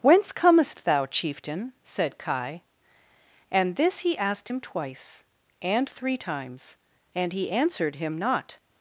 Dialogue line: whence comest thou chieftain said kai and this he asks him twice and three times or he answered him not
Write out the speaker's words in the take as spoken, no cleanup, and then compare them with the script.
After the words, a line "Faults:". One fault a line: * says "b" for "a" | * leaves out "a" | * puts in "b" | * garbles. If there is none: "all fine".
whence comest thou chieftain said kai and this he asked him twice and three times and he answered him not
Faults:
* says "asked" for "asks"
* says "and" for "or"